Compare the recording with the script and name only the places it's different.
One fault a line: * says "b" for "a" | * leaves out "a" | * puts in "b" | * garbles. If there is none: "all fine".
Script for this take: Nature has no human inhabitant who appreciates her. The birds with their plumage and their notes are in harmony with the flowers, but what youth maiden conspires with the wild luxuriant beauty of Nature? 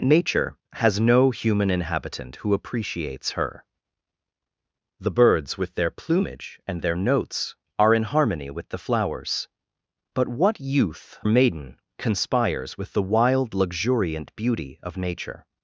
all fine